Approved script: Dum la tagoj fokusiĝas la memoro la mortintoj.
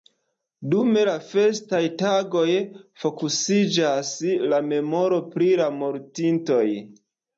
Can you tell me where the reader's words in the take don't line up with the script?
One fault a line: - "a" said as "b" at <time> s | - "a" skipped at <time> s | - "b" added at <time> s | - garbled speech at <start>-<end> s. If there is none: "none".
- "festaj" added at 1.2 s
- "pri" added at 5.4 s